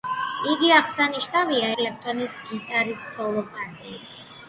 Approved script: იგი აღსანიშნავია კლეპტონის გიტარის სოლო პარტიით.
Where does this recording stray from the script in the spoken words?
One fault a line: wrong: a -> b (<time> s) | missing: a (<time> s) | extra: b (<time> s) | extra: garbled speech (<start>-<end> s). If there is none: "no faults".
no faults